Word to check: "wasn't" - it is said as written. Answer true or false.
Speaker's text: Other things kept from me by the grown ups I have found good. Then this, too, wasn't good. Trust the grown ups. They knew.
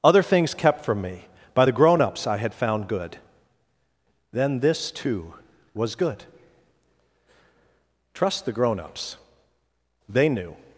false